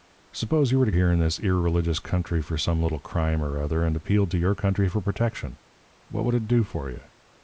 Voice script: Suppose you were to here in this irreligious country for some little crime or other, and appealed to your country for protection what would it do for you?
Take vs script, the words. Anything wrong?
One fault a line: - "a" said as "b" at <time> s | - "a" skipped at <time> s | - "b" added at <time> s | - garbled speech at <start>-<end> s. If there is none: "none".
none